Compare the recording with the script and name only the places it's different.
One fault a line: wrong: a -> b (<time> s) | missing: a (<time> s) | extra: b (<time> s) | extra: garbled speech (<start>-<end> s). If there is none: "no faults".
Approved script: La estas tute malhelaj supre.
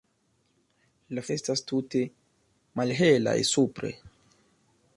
no faults